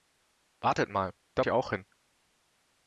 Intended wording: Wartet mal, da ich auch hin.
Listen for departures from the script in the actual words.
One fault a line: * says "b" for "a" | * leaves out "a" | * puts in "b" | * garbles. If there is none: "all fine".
all fine